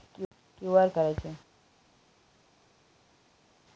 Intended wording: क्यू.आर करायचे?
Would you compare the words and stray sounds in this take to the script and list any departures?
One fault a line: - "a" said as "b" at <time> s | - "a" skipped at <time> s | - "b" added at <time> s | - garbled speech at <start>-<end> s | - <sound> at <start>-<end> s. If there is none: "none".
none